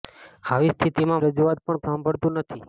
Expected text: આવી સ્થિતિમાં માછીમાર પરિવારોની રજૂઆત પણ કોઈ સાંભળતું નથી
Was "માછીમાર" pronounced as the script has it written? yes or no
no